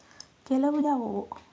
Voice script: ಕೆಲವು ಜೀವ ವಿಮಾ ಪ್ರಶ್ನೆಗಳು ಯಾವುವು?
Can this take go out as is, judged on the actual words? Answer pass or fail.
fail